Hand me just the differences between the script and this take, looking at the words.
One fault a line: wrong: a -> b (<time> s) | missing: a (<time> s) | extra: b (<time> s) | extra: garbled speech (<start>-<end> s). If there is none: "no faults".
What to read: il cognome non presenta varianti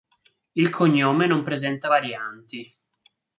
no faults